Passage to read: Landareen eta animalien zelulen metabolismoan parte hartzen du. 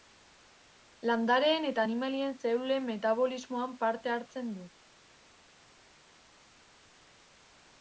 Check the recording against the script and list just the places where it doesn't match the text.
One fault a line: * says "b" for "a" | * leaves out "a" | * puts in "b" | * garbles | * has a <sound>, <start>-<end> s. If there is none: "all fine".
all fine